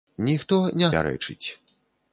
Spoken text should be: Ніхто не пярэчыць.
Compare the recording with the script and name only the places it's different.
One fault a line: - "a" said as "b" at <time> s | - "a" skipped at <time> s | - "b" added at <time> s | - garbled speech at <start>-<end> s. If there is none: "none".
none